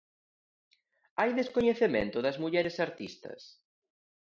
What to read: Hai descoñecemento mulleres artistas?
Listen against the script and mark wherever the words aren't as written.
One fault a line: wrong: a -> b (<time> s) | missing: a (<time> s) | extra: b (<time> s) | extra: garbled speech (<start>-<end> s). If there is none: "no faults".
extra: das (2.2 s)